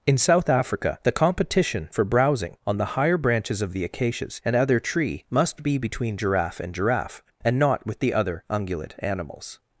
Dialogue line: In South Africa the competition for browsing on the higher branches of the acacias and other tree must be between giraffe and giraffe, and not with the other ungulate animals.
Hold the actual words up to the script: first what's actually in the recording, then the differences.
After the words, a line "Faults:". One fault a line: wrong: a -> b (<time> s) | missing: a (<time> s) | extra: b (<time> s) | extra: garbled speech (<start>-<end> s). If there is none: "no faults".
In South Africa the competition for browsing on the higher branches of the acacias and other tree must be between giraffe and giraffe, and not with the other ungulate animals.
Faults:
no faults